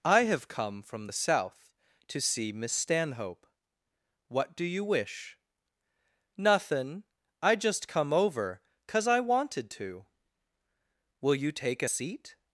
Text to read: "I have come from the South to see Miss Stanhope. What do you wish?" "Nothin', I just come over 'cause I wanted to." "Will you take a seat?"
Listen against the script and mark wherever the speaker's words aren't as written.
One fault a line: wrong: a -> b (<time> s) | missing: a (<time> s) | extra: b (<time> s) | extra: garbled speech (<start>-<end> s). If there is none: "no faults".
no faults